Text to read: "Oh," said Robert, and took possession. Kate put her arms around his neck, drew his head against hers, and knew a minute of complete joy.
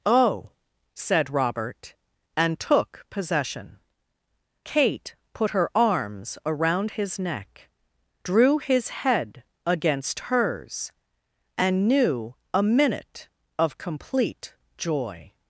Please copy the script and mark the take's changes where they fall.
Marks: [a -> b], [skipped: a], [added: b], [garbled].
"Oh," said Robert, and took possession. Kate put her arms around his neck, drew his head against hers, and knew a minute of complete joy.